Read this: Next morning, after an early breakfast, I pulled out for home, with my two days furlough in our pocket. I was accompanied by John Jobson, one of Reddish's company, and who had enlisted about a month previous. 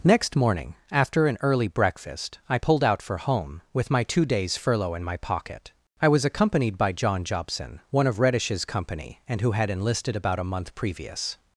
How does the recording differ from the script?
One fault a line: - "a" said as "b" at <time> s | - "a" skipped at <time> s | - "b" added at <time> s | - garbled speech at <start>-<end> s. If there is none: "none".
- "our" said as "my" at 5.0 s